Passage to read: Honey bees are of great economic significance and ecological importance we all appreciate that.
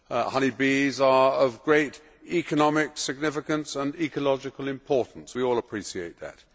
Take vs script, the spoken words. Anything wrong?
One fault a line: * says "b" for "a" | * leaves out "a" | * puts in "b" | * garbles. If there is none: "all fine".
all fine